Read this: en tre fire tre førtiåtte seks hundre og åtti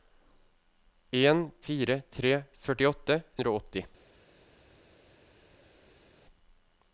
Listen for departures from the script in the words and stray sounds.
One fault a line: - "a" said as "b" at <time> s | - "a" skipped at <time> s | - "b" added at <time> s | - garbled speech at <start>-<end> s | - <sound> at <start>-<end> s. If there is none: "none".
- "tre" skipped at 1.4 s
- "seks" skipped at 3.2 s